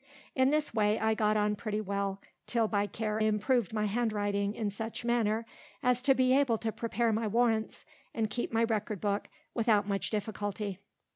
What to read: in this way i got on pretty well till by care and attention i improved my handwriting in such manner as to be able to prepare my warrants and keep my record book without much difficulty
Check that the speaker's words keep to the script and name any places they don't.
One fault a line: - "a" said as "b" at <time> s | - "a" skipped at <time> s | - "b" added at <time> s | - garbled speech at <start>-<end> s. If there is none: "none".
- "and attention i" skipped at 3.2 s